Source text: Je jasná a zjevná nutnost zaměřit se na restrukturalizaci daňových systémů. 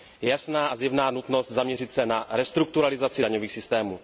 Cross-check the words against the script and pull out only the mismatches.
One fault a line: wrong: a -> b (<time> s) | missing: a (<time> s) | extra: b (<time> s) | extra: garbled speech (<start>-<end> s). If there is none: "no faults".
no faults